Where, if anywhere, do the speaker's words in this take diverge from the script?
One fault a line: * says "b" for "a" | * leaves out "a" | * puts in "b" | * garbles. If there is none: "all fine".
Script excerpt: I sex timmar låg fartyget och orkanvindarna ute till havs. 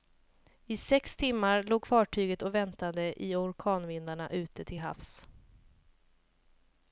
* puts in "väntade i"